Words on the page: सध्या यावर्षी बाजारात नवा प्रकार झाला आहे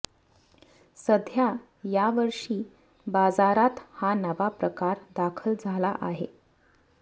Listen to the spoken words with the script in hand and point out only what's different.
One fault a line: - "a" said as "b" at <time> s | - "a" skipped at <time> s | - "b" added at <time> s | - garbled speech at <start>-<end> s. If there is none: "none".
- "हा" added at 3.9 s
- "दाखल" added at 5.2 s